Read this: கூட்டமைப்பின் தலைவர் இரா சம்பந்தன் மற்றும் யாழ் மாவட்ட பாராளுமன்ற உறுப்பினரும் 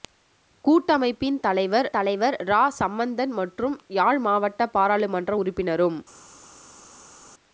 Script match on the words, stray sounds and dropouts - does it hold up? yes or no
no